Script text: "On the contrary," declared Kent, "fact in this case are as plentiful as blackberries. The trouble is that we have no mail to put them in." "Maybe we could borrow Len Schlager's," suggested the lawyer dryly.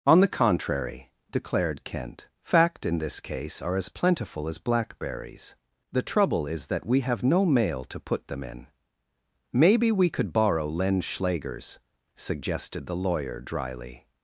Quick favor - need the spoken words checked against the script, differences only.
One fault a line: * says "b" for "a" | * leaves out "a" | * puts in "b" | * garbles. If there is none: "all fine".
all fine